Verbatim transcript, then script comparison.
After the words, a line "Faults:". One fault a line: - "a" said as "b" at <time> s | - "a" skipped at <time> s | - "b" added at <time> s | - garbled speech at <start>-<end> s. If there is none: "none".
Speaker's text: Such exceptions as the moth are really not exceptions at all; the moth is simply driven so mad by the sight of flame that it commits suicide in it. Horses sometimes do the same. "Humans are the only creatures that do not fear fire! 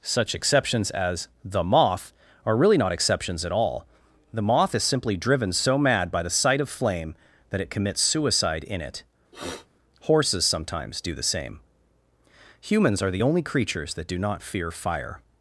Such exceptions as the moth are really not exceptions at all; the moth is simply driven so mad by the sight of flame that it commits suicide in it. Horses sometimes do the same. "Humans are the only creatures that do not fear fire!
Faults:
none